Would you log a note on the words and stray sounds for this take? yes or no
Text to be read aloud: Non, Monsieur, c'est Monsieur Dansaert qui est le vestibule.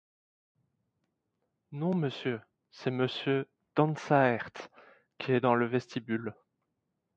yes